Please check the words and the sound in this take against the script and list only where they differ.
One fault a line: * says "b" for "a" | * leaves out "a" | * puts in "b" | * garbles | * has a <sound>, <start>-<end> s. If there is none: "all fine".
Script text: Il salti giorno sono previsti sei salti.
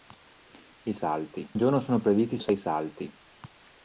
all fine